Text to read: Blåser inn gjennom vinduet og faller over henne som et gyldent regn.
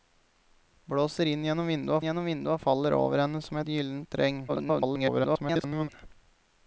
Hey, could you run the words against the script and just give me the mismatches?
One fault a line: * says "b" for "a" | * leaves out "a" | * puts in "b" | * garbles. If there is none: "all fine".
* puts in "gjennom vinduet"
* garbles